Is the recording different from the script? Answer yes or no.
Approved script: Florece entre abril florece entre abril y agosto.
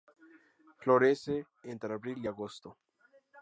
yes